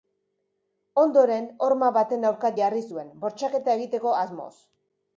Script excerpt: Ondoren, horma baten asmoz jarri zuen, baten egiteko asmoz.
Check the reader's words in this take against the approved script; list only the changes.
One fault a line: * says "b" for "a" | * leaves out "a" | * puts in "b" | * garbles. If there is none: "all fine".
* says "aurka" for "asmoz"
* says "bortxaketa" for "baten"